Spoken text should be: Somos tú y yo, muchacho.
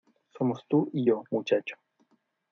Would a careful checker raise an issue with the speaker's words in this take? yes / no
no